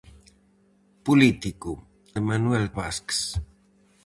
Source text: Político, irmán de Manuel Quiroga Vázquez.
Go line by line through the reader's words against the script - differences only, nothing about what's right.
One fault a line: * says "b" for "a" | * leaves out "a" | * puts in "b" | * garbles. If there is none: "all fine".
* leaves out "irmán"
* leaves out "Quiroga"